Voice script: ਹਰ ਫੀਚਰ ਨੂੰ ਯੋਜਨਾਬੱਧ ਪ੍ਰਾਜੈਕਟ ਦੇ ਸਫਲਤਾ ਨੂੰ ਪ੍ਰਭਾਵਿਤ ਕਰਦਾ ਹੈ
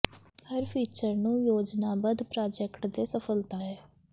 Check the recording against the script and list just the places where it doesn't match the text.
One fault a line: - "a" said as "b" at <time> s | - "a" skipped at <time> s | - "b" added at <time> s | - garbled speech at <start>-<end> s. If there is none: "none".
- "ਨੂੰ ਪ੍ਰਭਾਵਿਤ ਕਰਦਾ" skipped at 3.6 s